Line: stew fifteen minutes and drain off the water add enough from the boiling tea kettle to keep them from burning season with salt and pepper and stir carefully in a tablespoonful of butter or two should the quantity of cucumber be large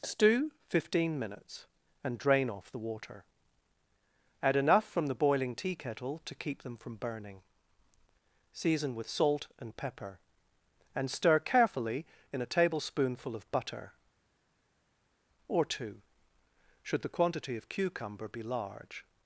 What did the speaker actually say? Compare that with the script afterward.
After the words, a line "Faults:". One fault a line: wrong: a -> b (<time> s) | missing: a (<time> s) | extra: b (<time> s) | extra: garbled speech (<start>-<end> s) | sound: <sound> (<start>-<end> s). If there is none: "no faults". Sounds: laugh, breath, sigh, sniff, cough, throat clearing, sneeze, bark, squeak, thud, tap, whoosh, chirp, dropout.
stew fifteen minutes and drain off the water add enough from the boiling tea kettle to keep them from burning season with salt and pepper and stir carefully in a tablespoonful of butter or two should the quantity of cucumber be large
Faults:
no faults